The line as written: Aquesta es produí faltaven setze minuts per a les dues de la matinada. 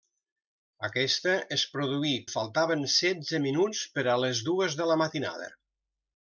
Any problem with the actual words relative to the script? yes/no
no